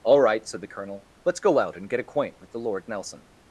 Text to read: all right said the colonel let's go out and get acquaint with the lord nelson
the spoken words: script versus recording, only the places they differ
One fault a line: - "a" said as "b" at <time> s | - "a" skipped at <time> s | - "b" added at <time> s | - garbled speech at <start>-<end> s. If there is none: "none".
none